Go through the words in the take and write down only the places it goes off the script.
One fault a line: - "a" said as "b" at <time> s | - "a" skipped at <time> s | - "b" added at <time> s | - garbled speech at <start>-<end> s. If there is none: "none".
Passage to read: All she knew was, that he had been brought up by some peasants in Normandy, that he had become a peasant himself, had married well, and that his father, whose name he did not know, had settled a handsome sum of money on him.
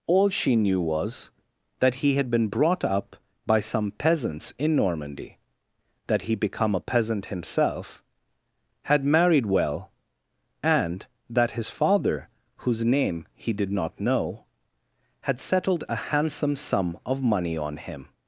- "had" skipped at 6.3 s